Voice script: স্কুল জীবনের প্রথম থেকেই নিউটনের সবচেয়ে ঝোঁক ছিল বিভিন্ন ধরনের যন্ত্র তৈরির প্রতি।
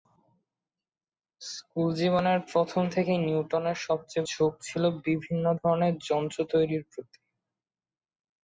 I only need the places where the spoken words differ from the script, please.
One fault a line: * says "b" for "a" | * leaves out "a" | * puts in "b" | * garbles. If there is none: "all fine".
all fine